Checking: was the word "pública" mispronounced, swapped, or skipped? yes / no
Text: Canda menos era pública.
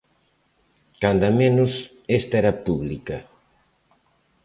no